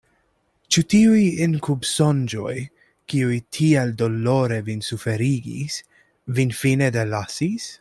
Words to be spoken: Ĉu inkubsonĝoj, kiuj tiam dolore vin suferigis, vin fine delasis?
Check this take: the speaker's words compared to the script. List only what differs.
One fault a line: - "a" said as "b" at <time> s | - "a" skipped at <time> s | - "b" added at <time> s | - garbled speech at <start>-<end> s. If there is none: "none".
- "tiuj" added at 0.9 s
- "tiam" said as "tiel" at 3.6 s